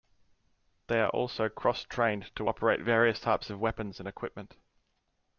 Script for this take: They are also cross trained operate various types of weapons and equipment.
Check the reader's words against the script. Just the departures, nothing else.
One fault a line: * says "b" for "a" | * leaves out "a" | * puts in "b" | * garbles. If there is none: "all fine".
* puts in "to"